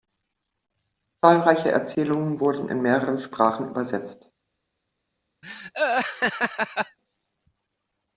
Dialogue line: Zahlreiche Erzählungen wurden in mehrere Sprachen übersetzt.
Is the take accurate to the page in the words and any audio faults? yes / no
no